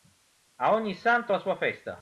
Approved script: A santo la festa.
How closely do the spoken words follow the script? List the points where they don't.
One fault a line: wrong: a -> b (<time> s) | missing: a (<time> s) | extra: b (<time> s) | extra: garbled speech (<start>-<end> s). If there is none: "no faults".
extra: ogni (0.7 s)
extra: sua (1.4 s)